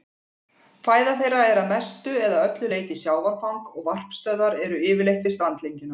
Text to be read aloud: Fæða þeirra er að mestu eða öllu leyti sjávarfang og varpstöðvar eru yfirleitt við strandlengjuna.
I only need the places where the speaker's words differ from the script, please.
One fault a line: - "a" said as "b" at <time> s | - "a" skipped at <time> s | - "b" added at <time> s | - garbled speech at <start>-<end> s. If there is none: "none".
none